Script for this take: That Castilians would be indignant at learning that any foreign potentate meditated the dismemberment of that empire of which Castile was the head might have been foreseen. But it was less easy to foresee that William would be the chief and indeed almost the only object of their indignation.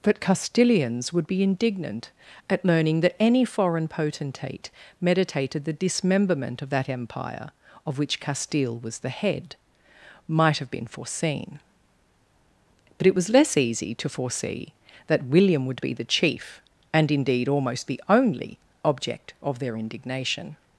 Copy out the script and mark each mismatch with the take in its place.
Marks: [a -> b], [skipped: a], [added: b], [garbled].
[That -> But] Castilians would be indignant at learning that any foreign potentate meditated the dismemberment of that empire of which Castile was the head might have been foreseen. But it was less easy to foresee that William would be the chief and indeed almost the only object of their indignation.